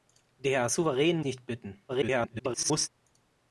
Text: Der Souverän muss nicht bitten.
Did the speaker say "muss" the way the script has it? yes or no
no